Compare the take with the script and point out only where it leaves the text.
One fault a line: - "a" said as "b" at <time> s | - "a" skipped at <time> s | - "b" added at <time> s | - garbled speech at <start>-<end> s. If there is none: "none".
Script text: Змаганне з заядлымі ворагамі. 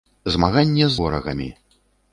- "заядлымі" skipped at 1.0 s